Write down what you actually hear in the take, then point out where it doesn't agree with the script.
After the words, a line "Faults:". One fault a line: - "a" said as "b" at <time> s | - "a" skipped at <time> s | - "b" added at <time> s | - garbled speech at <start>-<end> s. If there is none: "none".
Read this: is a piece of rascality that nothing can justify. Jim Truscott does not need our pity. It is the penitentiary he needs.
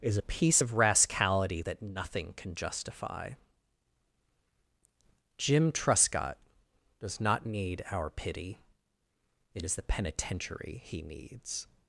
is a piece of rascality that nothing can justify. Jim Truscott does not need our pity. It is the penitentiary he needs.
Faults:
none